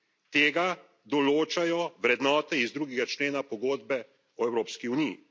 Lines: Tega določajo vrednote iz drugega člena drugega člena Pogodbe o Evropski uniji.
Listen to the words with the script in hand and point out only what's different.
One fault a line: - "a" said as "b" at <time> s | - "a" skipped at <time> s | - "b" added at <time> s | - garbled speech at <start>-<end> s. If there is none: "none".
- "drugega člena" skipped at 3.4 s